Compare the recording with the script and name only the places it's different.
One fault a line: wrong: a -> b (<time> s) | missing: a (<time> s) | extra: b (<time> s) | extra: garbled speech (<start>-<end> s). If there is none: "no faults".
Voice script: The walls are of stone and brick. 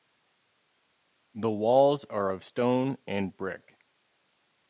no faults